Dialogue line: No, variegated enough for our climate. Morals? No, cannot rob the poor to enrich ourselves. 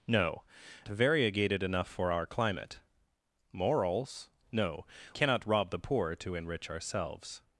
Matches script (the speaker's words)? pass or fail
pass